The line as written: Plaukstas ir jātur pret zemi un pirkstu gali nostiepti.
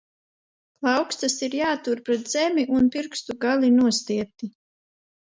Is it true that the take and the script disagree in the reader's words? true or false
false